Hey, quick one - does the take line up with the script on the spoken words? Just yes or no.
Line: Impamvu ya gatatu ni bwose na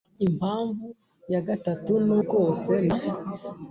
yes